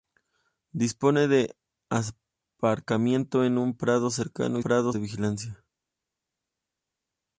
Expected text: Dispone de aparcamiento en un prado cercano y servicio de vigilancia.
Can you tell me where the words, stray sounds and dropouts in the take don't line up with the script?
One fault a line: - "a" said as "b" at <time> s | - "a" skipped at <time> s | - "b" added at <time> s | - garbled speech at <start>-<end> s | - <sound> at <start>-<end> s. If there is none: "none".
- "servicio" said as "prado" at 4.6 s